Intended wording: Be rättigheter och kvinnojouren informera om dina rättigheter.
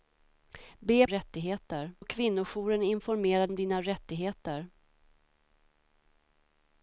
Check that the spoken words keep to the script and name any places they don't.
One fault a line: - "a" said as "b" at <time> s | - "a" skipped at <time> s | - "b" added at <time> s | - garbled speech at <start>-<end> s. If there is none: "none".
none